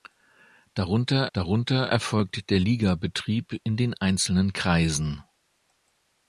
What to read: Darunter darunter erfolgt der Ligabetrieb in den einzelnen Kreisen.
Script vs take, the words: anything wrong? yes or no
no